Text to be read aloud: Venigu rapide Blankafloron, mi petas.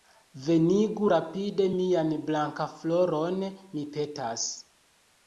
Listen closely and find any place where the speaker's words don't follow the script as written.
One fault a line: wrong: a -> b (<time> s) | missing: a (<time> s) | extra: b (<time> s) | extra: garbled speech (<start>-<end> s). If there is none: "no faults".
extra: mian (1.8 s)